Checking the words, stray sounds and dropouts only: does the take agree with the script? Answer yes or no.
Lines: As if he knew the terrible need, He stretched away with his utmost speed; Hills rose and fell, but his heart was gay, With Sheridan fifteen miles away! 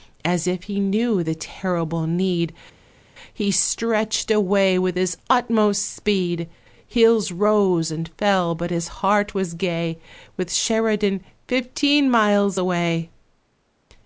yes